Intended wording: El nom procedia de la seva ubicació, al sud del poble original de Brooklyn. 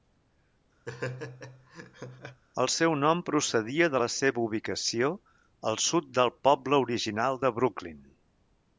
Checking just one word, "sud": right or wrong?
right